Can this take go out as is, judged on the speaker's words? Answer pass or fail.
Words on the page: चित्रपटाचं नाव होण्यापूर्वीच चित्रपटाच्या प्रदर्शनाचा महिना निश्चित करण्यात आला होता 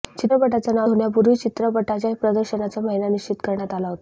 pass